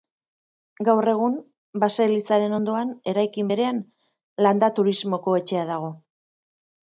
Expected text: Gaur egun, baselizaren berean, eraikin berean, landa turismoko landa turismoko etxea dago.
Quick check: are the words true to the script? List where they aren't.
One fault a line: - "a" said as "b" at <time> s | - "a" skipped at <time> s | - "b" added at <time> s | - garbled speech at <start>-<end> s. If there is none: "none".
- "berean" said as "ondoan" at 2.6 s
- "landa turismoko" skipped at 5.4 s